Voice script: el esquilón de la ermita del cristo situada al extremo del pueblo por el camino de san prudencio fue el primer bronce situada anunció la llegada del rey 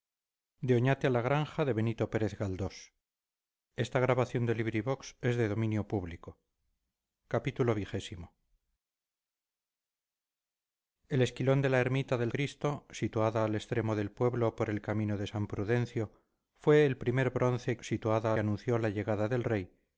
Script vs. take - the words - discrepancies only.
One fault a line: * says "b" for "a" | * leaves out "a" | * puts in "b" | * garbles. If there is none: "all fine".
all fine